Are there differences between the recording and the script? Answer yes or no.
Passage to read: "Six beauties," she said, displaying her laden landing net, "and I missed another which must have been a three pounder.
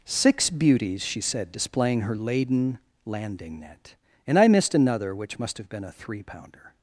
no